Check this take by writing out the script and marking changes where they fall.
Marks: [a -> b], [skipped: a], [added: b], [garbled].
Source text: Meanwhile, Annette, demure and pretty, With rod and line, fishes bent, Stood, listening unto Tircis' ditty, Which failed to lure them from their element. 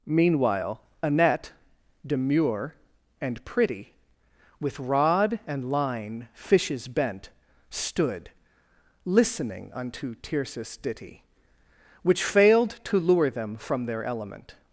Meanwhile, Annette, demure and pretty, With rod and line, fishes bent, Stood, listening unto Tircis' ditty, Which failed to lure them from their element.